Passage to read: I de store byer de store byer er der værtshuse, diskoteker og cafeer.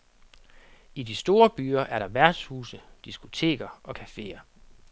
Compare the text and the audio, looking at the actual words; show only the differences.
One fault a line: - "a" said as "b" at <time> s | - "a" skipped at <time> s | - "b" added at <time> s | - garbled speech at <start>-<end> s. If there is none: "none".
- "de store byer" skipped at 1.8 s